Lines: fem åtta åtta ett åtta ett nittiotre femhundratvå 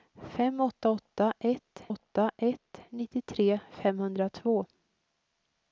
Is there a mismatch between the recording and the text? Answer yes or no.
no